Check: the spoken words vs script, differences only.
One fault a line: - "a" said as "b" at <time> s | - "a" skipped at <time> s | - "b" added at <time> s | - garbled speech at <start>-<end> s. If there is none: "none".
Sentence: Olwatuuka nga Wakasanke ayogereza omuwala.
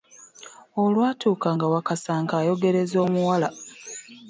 none